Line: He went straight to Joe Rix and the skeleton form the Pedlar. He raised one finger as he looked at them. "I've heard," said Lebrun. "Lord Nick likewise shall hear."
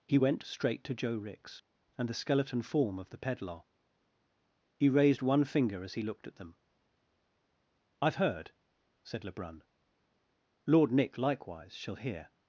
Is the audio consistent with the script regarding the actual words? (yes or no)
no